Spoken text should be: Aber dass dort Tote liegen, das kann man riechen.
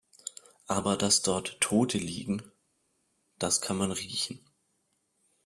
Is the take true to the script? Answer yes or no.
yes